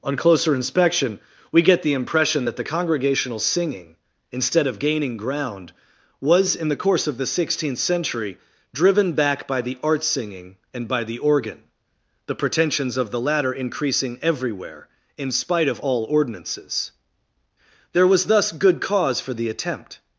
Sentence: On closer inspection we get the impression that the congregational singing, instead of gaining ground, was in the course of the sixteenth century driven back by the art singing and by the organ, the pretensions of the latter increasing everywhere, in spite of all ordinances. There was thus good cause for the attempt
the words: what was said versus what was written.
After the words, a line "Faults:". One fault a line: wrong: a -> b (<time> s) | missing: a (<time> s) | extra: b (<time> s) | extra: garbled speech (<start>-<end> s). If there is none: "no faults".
On closer inspection we get the impression that the congregational singing, instead of gaining ground, was in the course of the sixteenth century driven back by the art singing and by the organ, the pretensions of the latter increasing everywhere, in spite of all ordinances. There was thus good cause for the attempt
Faults:
no faults